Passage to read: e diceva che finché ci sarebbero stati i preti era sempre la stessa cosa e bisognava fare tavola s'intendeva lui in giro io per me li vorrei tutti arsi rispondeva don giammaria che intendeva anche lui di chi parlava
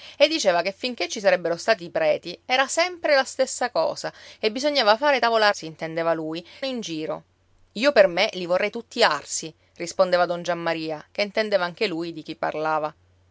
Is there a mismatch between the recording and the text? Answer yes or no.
no